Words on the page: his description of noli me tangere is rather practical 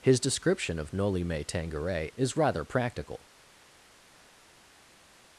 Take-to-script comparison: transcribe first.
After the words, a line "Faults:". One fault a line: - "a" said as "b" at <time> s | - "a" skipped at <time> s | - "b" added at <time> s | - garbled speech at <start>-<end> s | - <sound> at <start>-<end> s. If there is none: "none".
his description of noli me tangere is rather practical
Faults:
none